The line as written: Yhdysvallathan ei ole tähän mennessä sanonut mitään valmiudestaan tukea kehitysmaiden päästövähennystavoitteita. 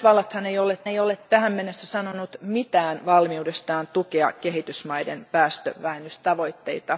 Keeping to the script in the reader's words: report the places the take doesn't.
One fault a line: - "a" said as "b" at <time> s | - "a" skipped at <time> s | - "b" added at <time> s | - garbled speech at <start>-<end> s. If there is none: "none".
- "ei ole" added at 0.9 s